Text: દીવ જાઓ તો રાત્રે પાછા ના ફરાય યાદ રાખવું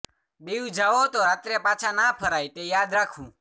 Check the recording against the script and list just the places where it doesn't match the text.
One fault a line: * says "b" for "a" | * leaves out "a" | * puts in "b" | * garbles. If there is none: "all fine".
* puts in "તે"